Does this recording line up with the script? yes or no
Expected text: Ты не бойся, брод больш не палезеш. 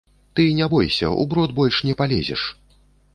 no